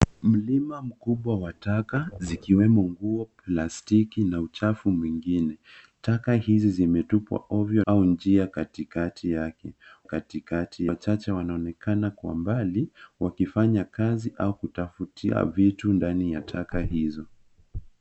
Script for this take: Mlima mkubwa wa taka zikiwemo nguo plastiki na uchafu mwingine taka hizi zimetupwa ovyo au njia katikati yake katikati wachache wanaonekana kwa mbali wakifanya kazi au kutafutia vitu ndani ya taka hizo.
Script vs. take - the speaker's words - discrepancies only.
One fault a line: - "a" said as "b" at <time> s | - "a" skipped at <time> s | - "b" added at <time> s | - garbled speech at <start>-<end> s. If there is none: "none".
none